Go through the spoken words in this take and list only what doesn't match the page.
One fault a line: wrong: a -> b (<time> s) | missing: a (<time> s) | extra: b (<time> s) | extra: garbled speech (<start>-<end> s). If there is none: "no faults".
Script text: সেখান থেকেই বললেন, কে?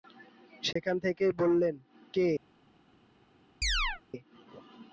no faults